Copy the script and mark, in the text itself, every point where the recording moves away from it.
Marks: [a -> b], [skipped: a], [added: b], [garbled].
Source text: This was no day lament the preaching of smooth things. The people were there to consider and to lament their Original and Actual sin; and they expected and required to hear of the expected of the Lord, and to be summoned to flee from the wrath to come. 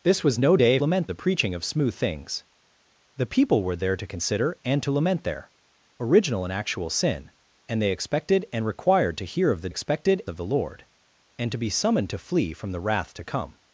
This was no day lament the preaching of smooth things. The people were there to consider and to lament their Original and Actual sin; and they expected and required to hear of the expected of the Lord, and to be summoned to flee from the wrath to come.